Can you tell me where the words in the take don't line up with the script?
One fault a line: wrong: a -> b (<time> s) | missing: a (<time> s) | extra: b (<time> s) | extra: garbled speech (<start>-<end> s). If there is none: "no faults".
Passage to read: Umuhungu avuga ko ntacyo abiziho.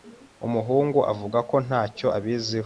no faults